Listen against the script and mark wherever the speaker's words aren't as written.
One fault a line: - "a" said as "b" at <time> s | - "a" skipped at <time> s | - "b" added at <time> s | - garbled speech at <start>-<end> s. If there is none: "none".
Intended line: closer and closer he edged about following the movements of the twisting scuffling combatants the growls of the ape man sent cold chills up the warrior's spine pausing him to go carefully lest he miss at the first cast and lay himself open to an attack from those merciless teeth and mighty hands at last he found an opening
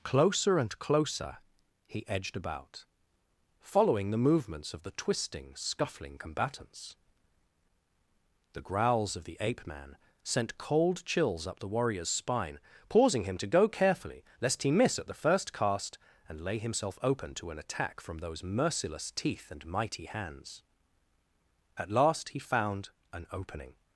none